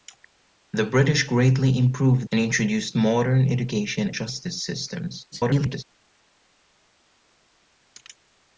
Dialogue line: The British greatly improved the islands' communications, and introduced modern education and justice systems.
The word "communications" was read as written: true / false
false